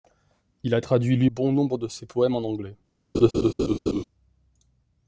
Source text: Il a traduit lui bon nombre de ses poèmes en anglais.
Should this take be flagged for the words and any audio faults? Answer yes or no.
yes